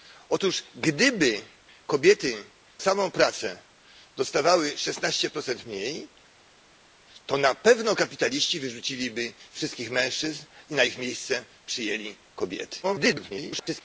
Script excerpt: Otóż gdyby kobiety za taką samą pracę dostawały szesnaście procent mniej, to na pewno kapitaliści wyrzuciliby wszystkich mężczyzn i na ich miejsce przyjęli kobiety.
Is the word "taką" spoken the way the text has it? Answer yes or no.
no